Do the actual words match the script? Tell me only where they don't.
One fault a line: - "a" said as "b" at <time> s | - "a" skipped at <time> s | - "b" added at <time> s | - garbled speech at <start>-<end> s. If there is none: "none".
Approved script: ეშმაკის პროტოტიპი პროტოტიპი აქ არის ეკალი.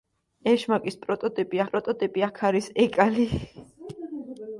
none